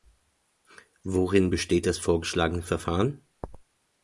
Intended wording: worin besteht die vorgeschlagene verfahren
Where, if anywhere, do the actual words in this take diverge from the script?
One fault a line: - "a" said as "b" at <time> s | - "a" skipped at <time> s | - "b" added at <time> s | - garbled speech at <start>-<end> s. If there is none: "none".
- "die" said as "das" at 1.8 s